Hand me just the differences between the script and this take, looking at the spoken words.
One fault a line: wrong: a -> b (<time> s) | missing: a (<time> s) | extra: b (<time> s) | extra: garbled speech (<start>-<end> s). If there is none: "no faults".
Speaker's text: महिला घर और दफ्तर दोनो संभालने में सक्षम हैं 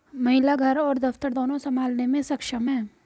no faults